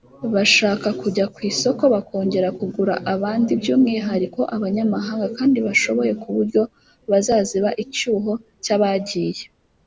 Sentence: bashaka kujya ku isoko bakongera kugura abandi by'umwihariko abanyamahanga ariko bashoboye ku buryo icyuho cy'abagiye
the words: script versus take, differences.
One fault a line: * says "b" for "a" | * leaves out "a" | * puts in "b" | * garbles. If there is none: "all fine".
* says "kandi" for "ariko"
* puts in "bazaziba"